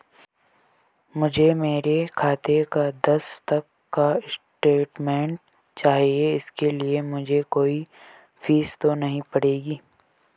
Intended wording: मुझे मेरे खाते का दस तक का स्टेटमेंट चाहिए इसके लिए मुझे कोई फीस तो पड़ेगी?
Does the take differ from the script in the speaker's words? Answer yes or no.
yes